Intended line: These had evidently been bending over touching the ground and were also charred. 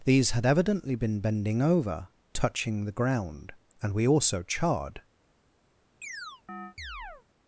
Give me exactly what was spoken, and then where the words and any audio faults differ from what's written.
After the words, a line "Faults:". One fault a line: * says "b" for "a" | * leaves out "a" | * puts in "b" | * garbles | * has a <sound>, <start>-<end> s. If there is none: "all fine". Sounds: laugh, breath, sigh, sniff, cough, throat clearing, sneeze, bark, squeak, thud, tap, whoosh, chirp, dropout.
These had evidently been bending over touching the ground and we also charred.
Faults:
* says "we" for "were"
* has a chirp, 6.0-7.3 s